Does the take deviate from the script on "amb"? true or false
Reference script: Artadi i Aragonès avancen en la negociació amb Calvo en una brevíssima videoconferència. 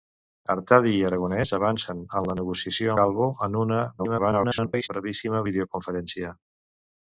true